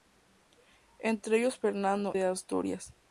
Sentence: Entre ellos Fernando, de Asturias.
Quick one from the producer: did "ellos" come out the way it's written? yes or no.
yes